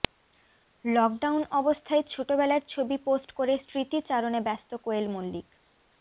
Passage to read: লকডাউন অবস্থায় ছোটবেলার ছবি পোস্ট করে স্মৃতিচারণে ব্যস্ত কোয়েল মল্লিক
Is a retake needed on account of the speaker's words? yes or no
no